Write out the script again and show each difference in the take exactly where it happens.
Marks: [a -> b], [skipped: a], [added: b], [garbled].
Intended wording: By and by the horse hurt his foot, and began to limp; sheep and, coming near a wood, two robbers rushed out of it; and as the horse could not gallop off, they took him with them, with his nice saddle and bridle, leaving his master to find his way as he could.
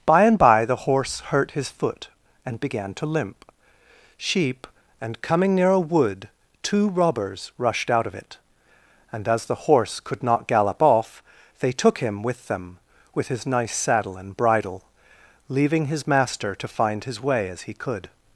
By and by the horse hurt his foot, and began to limp; sheep and, coming near a wood, two robbers rushed out of it; and as the horse could not gallop off, they took him with them, with his nice saddle and bridle, leaving his master to find his way as he could.